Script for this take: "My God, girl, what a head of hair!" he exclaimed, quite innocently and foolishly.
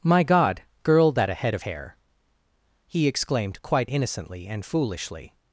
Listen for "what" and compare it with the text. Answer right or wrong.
wrong